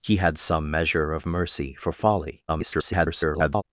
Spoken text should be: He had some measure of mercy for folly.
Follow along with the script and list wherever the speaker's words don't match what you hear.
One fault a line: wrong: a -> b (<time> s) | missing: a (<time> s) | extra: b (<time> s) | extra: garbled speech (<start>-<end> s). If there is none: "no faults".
extra: garbled speech (2.5-3.6 s)